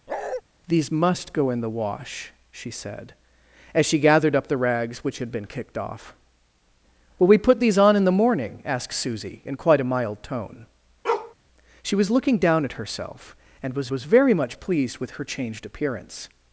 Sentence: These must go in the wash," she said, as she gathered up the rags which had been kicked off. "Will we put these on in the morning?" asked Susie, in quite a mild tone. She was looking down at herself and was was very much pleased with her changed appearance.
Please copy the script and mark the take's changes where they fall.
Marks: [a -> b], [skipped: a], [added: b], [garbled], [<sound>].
[bark] These must go in the wash," she said, as she gathered up the rags which had been kicked off. "Will we put these on in the morning?" asked Susie, in quite a mild tone. [bark] She was looking down at herself and was was very much pleased with her changed appearance.